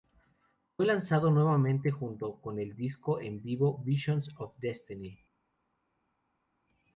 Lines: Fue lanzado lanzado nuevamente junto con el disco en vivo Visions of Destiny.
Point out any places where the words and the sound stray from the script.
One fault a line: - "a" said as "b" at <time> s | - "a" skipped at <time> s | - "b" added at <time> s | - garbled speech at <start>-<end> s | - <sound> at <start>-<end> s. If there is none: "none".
- "lanzado" skipped at 1.3 s